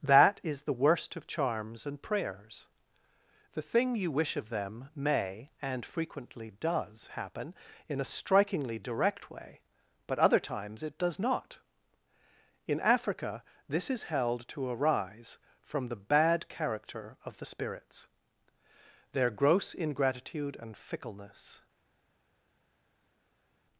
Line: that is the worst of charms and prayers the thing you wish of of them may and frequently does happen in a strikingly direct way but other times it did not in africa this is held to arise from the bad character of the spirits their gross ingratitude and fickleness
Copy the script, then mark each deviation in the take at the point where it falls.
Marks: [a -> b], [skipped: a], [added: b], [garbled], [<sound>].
that is the worst of charms and prayers the thing you wish of [skipped: of] them may and frequently does happen in a strikingly direct way but other times it [did -> does] not in africa this is held to arise from the bad character of the spirits their gross ingratitude and fickleness